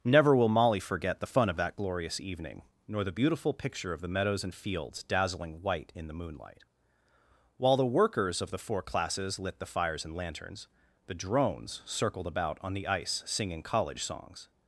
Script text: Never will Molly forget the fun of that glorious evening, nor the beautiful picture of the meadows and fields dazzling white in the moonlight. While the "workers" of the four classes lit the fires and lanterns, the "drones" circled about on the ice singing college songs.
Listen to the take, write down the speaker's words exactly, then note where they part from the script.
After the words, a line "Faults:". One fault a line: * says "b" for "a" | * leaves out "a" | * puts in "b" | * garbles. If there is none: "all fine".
Never will Molly forget the fun of that glorious evening, nor the beautiful picture of the meadows and fields dazzling white in the moonlight. While the "workers" of the four classes lit the fires and lanterns, the "drones" circled about on the ice singing college songs.
Faults:
all fine